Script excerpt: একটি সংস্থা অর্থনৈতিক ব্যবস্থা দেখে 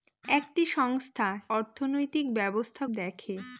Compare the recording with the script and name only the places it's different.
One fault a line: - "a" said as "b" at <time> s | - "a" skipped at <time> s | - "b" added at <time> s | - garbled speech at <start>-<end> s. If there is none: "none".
none